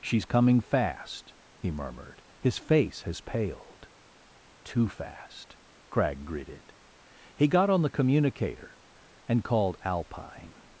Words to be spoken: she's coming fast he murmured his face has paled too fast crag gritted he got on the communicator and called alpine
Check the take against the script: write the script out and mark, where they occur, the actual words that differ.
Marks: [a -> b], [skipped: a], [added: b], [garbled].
she's coming fast he murmured his face has paled too fast crag gritted he got on the communicator and called alpine